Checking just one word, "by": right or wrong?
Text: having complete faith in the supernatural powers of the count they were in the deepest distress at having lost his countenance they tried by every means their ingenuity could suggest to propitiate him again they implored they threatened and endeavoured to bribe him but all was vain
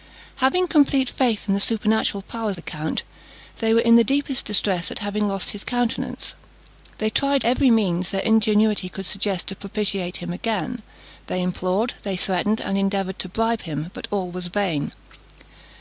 wrong